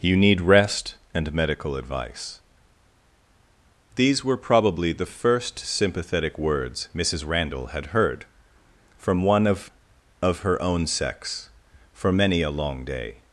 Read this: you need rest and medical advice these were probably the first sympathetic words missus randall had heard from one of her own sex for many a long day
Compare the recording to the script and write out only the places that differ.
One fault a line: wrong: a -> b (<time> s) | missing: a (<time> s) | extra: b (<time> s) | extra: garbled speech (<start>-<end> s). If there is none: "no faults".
extra: of (10.2 s)